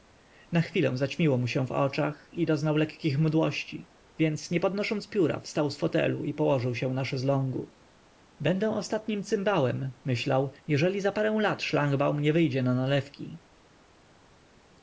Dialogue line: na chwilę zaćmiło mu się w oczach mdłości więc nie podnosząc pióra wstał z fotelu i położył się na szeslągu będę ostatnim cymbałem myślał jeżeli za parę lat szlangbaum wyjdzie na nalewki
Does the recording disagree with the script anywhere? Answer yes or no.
yes